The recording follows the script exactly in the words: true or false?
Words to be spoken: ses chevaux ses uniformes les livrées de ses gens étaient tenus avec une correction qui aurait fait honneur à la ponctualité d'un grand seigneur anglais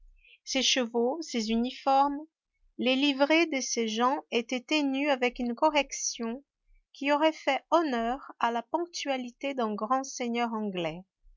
true